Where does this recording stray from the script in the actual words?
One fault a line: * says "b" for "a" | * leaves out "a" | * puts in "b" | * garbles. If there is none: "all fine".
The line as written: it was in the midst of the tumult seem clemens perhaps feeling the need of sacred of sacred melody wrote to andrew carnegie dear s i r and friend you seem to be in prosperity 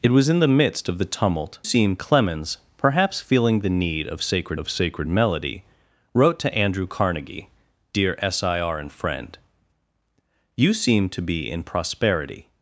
all fine